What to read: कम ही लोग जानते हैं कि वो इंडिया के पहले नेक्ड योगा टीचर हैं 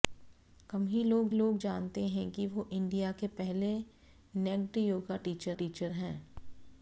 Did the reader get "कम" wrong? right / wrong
right